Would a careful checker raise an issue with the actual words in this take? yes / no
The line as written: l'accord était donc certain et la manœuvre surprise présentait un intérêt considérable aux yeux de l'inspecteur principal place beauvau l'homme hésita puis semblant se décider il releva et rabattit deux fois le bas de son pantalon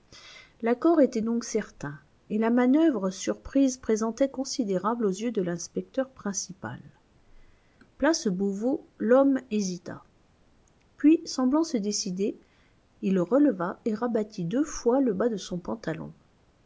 yes